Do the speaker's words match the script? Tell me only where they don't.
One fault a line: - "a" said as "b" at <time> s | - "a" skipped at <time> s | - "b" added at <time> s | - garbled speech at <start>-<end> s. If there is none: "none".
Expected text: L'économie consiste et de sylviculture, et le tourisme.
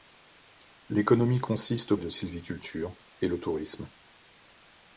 none